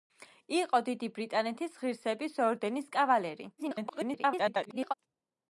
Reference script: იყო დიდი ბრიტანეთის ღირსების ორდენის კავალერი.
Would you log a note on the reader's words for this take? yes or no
yes